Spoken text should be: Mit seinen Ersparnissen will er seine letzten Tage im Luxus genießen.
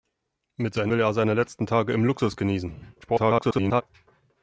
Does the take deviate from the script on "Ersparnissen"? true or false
true